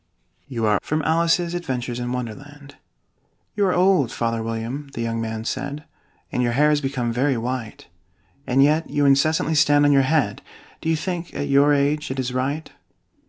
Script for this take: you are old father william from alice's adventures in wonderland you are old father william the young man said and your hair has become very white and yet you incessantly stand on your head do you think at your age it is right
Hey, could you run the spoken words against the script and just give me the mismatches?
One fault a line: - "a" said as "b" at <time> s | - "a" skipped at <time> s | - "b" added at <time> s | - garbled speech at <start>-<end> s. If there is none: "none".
- "old father william" skipped at 0.8 s